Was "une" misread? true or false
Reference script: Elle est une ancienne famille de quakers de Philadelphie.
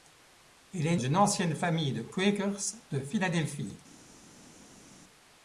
false